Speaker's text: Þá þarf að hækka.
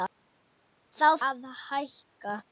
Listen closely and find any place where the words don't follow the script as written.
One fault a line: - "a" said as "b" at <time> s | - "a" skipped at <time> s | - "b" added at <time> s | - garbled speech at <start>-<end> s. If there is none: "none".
- "þarf" skipped at 1.1 s